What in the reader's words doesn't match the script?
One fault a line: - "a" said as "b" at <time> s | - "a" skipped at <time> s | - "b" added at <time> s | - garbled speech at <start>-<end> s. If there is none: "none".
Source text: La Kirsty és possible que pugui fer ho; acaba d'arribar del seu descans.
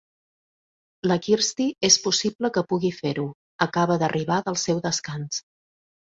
none